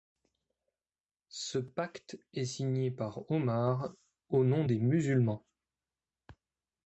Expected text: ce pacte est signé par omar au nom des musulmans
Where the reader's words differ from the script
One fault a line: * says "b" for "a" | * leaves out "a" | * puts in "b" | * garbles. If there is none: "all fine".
all fine